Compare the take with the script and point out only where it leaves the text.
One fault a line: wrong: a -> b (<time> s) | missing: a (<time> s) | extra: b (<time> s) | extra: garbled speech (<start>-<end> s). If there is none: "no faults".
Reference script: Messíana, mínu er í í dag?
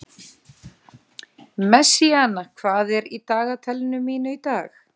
wrong: mínu -> hvað (2.6 s)
extra: dagatalinu mínu (3.3 s)